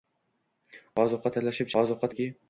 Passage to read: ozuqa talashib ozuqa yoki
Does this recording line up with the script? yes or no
yes